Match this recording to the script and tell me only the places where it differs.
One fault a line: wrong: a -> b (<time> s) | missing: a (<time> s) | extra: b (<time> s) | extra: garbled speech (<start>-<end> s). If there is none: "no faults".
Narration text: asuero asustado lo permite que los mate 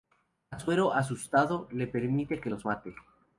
wrong: lo -> le (1.7 s)